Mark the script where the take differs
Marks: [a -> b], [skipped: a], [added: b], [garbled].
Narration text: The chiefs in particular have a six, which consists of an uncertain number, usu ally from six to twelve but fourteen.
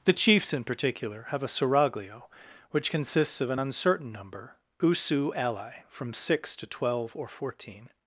The chiefs in particular have a [six, -> seraglio] which consists of an uncertain number, usu ally from six to twelve [but -> or] fourteen.